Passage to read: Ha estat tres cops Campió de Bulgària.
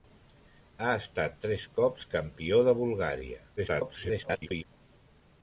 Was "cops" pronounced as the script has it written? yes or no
yes